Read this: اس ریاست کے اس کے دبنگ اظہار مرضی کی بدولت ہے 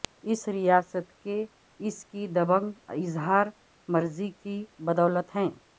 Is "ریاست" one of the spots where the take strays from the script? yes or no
no